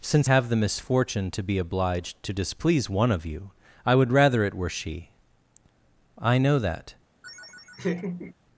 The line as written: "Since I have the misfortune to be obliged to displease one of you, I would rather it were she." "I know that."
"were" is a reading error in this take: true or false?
false